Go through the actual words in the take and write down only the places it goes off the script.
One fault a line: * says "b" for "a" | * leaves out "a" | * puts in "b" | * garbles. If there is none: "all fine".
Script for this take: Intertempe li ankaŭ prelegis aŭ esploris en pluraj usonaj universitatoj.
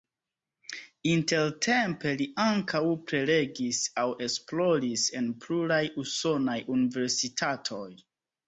all fine